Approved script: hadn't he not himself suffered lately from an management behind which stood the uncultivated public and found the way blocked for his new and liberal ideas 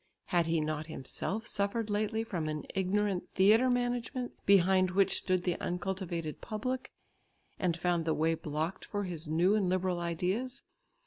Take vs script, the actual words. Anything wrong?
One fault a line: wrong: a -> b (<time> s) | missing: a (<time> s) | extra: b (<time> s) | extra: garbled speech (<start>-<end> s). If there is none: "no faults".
wrong: hadn't -> had (0.3 s)
extra: ignorant theatre (2.7 s)